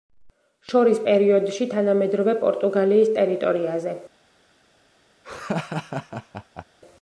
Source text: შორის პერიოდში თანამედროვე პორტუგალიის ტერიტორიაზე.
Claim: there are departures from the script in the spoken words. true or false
false